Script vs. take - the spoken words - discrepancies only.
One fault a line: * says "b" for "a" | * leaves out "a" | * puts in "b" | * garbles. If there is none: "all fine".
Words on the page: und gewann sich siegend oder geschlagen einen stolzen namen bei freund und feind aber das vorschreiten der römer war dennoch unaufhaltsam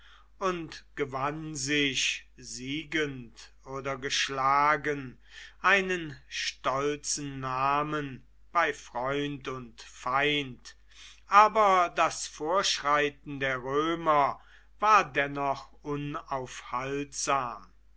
all fine